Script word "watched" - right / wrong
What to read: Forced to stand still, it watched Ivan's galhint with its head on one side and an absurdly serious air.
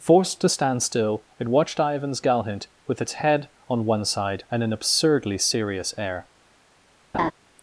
right